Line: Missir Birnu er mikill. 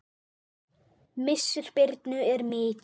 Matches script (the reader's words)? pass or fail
pass